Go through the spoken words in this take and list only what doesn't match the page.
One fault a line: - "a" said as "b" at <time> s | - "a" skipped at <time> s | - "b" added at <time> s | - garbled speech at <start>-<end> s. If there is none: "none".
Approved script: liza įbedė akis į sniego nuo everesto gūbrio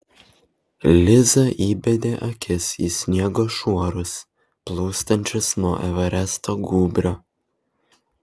- "šuorus plūstančius" added at 3.6 s